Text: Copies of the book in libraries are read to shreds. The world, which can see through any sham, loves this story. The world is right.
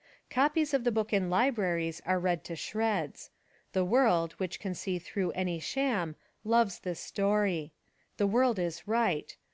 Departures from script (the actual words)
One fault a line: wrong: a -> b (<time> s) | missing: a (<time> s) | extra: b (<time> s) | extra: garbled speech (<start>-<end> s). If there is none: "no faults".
no faults